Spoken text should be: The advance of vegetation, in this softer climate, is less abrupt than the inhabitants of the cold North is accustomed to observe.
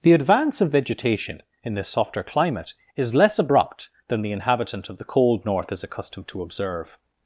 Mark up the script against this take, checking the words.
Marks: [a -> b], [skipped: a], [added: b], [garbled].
The advance of vegetation, in this softer climate, is less abrupt than the [inhabitants -> inhabitant] of the cold North is accustomed to observe.